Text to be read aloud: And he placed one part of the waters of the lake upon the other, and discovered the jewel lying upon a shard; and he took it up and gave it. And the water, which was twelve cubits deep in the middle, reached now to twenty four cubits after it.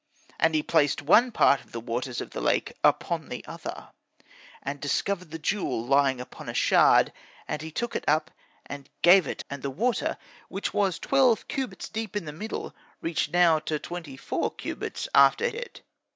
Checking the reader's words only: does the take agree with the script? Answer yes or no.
yes